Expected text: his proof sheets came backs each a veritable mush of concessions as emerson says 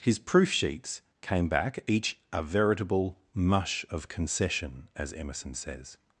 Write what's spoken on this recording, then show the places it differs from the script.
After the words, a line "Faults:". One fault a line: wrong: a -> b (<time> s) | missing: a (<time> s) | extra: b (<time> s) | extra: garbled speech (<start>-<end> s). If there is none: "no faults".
his proof sheets came back each a veritable mush of concession as emerson says
Faults:
wrong: backs -> back (1.5 s)
wrong: concessions -> concession (4.1 s)